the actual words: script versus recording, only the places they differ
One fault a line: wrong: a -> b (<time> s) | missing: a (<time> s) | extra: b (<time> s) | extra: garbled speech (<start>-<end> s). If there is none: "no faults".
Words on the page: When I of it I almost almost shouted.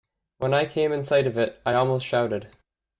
extra: came in sight (0.7 s)
missing: almost (2.0 s)